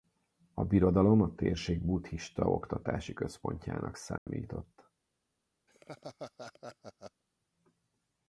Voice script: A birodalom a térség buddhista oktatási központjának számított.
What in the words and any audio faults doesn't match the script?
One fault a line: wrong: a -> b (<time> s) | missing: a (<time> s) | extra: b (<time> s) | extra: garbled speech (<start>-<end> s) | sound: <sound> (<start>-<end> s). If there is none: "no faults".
sound: dropout (4.2-4.3 s)
sound: laugh (5.7-7.2 s)